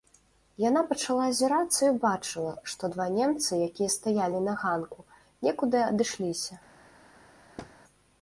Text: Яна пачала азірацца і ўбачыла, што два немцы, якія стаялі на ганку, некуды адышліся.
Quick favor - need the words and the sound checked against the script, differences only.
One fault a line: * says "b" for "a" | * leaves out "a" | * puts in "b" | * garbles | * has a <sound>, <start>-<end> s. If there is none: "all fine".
* has a thud, 7.6-7.7 s